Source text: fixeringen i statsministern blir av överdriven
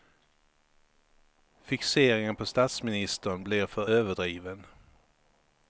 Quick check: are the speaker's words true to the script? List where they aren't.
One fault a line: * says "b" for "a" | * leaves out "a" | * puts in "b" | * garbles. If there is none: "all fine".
* says "på" for "i"
* says "för" for "av"